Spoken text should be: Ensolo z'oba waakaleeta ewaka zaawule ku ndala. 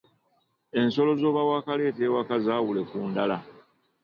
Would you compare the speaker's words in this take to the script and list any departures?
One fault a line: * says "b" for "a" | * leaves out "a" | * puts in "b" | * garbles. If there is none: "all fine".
all fine